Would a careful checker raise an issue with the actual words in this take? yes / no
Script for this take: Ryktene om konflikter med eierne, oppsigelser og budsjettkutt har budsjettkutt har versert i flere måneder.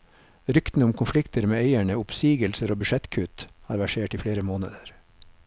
yes